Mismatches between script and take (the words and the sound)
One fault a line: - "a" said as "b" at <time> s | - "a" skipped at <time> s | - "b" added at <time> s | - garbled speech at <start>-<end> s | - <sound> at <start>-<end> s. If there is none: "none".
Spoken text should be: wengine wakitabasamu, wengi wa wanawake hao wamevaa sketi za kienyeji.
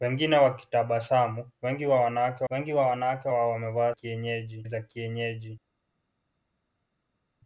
- "wengi wa wanawake" added at 2.5 s
- "sketi" said as "kienyeji" at 3.9 s